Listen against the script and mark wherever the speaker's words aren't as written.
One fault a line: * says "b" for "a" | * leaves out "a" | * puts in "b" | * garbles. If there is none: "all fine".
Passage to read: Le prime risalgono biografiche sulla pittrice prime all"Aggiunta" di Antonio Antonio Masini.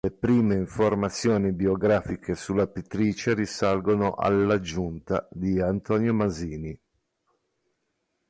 * says "informazioni" for "risalgono"
* says "risalgono" for "prime"
* leaves out "Antonio"